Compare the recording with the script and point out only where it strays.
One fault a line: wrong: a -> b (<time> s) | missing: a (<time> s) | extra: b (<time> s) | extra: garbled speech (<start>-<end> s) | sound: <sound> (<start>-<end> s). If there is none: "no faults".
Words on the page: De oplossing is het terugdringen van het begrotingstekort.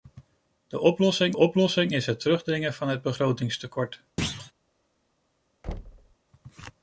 extra: oplossing (1.3 s)
sound: thud (4.2-4.5 s)
sound: thud (5.6-6.2 s)